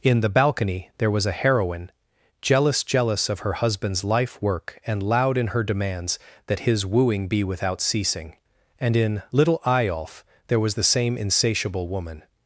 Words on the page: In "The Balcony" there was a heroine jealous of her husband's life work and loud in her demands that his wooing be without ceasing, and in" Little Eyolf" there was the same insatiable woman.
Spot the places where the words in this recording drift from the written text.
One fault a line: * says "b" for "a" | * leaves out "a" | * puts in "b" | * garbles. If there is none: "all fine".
* puts in "jealous"